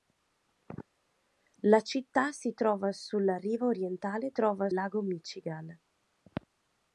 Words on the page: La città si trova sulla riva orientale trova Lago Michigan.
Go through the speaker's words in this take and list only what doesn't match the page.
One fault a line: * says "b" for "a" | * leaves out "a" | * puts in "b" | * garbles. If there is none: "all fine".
all fine